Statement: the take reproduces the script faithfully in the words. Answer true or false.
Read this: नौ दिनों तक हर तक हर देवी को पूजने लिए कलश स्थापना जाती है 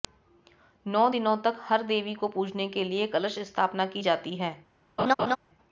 false